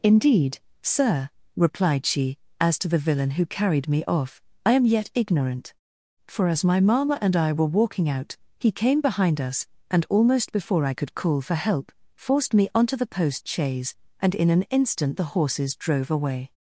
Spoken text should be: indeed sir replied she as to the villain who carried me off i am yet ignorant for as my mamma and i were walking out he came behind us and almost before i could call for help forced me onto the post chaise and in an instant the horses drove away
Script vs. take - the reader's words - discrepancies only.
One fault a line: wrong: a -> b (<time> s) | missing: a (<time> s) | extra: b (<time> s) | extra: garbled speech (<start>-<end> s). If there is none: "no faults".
no faults